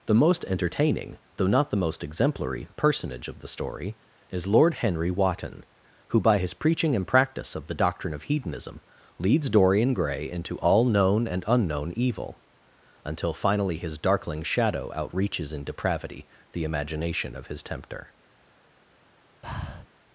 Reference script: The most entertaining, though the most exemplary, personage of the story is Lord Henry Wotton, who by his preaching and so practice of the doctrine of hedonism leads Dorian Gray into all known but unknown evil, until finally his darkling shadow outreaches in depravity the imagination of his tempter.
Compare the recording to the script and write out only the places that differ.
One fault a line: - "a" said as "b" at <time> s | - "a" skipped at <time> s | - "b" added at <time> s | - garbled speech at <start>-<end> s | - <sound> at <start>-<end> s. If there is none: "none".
- "not" added at 1.5 s
- "so" skipped at 7.0 s
- "but" said as "and" at 11.3 s
- breath at 19.4-19.9 s